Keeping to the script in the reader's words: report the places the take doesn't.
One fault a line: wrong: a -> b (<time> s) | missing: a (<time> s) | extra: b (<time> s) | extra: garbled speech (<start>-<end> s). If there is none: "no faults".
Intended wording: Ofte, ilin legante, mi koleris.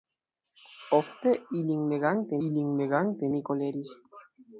extra: ilin legante (2.5 s)